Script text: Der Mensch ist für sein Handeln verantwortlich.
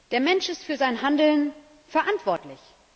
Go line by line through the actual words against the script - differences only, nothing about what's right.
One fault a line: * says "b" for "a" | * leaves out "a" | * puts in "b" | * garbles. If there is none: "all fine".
all fine